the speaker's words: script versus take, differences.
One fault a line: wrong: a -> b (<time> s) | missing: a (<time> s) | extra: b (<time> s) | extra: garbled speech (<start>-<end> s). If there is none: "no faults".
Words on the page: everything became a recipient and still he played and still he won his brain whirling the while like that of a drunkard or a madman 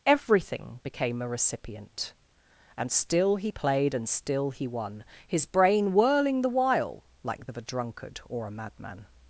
missing: that (7.5 s)